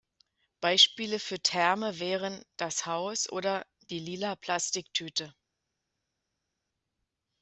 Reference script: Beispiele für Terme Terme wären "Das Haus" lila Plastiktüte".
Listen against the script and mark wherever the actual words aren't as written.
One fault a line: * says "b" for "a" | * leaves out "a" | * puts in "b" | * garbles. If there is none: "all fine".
* leaves out "Terme"
* puts in "oder Die"